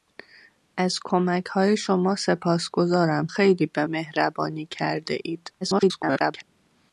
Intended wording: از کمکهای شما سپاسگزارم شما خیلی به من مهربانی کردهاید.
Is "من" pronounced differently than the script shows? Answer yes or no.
yes